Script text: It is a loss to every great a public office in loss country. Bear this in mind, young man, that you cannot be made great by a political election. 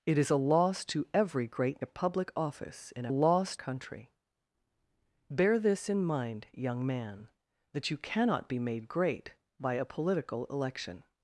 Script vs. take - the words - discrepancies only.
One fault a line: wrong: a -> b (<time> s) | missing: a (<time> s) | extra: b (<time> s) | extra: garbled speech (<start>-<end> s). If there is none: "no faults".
no faults